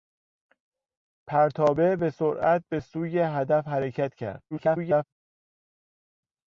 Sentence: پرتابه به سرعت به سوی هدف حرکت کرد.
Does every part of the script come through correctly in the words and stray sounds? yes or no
no